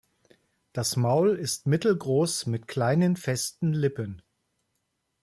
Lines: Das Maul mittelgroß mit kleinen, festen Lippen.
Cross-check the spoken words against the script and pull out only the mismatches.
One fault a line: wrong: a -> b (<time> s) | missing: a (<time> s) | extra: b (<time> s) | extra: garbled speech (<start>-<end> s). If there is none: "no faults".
extra: ist (1.4 s)